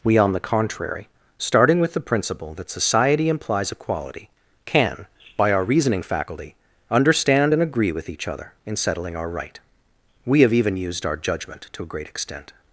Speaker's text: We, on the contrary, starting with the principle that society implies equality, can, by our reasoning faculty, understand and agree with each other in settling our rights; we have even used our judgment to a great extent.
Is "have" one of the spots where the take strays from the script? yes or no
no